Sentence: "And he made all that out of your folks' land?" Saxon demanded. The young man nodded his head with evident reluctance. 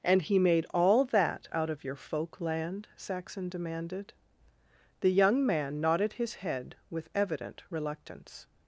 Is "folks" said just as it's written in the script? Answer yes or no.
no